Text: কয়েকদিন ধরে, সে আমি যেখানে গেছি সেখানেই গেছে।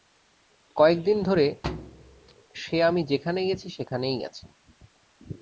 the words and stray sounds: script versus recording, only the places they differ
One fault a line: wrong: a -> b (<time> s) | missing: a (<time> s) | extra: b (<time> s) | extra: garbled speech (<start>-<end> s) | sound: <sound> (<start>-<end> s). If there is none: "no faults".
sound: thud (1.6-2.3 s)